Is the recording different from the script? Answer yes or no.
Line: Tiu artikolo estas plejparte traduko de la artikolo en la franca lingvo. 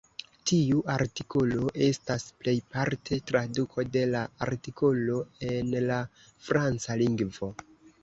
no